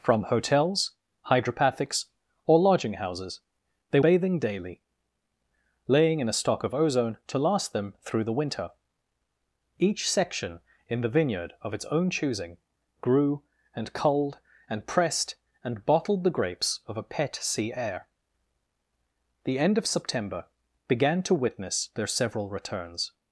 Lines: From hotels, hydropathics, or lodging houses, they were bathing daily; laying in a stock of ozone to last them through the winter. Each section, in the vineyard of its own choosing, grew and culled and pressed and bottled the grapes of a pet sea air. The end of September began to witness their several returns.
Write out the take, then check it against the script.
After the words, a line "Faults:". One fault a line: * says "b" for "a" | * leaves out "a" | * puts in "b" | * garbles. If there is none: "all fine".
From hotels, hydropathics, or lodging houses, they bathing daily; laying in a stock of ozone to last them through the winter. Each section, in the vineyard of its own choosing, grew and culled and pressed and bottled the grapes of a pet sea air. The end of September began to witness their several returns.
Faults:
* leaves out "were"